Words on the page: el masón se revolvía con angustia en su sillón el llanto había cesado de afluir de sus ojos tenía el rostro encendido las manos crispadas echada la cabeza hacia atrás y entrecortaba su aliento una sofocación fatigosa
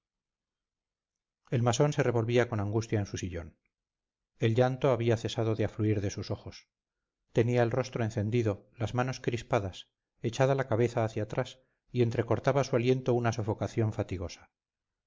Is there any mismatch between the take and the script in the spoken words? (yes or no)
no